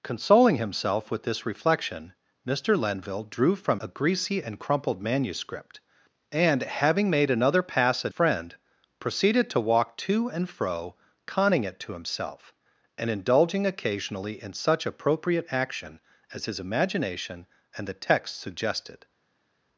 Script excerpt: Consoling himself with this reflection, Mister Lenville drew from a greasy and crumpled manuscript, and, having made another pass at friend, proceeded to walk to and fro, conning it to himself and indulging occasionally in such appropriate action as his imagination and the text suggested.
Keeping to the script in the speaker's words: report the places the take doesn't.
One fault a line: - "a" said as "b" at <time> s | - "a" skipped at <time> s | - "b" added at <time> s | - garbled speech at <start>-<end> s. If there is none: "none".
none